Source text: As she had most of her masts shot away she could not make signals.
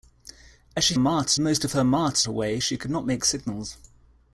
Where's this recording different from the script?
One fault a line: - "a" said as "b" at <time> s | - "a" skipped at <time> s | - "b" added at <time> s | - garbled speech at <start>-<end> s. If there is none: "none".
- "had" said as "masts" at 1.0 s
- "shot" skipped at 2.3 s